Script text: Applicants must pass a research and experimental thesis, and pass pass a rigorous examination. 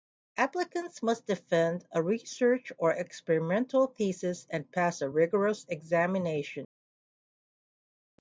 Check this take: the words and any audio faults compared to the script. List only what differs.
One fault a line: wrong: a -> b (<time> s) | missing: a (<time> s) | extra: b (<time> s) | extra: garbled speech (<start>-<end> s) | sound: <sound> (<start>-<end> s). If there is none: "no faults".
wrong: pass -> defend (1.3 s)
wrong: and -> or (2.8 s)
missing: pass (5.0 s)